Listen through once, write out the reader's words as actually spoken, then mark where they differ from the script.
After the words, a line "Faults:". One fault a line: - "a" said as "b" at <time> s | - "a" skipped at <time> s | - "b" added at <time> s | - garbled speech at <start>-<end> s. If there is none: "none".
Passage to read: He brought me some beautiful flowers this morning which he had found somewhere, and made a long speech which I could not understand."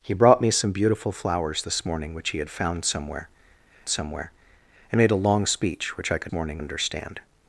He brought me some beautiful flowers this morning which he had found somewhere somewhere, and made a long speech which I could morning understand."
Faults:
- "somewhere" added at 3.9 s
- "not" said as "morning" at 6.3 s